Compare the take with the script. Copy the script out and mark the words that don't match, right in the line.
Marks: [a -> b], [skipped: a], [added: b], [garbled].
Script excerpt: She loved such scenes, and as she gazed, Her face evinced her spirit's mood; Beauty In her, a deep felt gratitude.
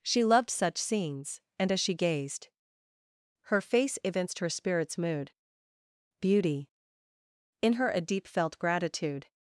She loved such scenes, and as she gazed, Her face evinced her spirit's mood; Beauty In her, a deep felt gratitude.